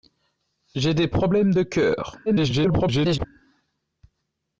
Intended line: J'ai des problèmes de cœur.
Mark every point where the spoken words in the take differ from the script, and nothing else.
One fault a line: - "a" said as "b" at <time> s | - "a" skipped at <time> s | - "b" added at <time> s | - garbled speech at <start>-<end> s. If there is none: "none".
- garbled speech at 2.3-3.3 s